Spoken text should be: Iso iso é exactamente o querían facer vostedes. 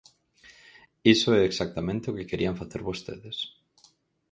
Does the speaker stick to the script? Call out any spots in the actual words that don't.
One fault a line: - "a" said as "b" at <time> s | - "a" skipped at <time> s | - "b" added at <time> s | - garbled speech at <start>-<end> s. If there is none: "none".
- "iso" skipped at 1.3 s
- "que" added at 2.2 s